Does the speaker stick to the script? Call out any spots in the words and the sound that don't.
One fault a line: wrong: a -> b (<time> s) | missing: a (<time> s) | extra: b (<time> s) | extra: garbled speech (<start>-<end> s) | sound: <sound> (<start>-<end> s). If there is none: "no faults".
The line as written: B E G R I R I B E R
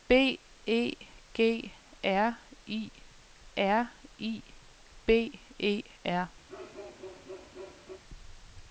sound: bark (6.5-8.0 s)